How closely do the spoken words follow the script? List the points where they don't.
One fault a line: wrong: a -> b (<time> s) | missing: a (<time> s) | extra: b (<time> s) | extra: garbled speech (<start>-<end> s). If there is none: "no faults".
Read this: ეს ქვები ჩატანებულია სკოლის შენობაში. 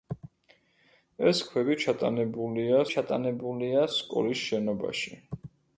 extra: ჩატანებულია (3.0 s)